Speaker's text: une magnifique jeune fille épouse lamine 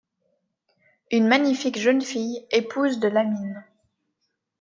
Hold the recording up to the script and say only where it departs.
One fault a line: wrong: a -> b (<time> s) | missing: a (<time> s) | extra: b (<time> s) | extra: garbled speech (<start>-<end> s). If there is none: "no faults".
extra: de (3.0 s)